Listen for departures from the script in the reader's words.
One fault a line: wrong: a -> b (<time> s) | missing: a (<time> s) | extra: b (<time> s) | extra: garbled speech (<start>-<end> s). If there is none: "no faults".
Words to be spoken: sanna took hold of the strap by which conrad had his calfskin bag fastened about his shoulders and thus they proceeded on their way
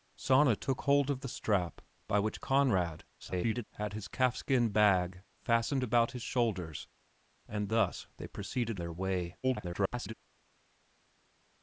extra: garbled speech (3.2-3.6 s)
missing: on (8.8 s)
extra: garbled speech (9.4-10.1 s)